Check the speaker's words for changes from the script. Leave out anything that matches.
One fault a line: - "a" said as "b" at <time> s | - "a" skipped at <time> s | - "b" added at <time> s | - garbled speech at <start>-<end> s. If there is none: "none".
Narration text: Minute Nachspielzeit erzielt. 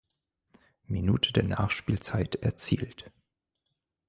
- "der" added at 1.3 s